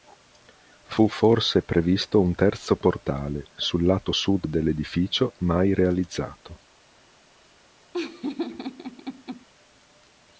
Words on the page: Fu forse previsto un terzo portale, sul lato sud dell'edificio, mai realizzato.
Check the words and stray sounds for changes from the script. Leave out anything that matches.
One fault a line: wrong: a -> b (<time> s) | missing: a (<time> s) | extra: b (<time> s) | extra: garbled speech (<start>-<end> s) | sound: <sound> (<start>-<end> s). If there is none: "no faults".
sound: laugh (7.9-9.5 s)